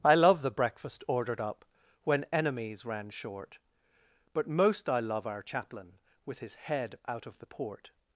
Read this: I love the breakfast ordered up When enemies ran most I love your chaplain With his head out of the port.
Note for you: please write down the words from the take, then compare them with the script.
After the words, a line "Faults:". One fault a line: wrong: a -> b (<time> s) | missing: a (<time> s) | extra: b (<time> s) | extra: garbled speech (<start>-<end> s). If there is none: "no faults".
I love the breakfast ordered up When enemies ran short, But most I love our chaplain With his head out of the port.
Faults:
extra: short But (3.1 s)
wrong: your -> our (5.3 s)